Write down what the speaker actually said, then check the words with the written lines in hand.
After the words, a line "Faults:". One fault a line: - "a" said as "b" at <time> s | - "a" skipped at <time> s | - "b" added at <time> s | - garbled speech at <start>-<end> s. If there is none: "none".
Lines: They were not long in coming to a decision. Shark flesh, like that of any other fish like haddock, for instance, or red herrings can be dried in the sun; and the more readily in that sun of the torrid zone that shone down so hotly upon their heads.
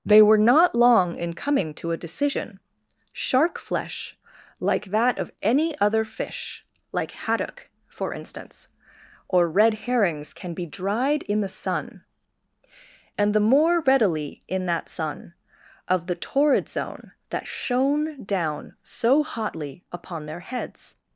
They were not long in coming to a decision. Shark flesh, like that of any other fish like haddock, for instance, or red herrings can be dried in the sun; and the more readily in that sun of the torrid zone that shone down so hotly upon their heads.
Faults:
none